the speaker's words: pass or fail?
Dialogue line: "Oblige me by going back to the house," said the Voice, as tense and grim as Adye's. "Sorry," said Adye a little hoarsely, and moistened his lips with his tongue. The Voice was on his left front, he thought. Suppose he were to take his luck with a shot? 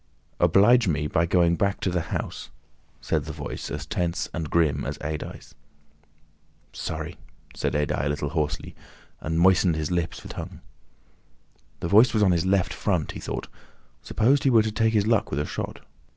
fail